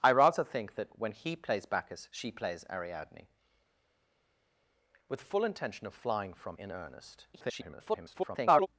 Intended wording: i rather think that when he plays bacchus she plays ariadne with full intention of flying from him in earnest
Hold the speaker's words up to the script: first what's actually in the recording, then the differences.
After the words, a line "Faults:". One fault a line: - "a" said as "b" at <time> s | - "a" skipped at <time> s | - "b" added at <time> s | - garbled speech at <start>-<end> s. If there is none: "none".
i rather think that when he plays bacchus she plays ariadne with full intention of flying from in earnest [garbled]
Faults:
- "him" skipped at 6.6 s
- garbled speech at 7.3-8.7 s